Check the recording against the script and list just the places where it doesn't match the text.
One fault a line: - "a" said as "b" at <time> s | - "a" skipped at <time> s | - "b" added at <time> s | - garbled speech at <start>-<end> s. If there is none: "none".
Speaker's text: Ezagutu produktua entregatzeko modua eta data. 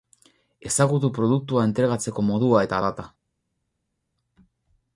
none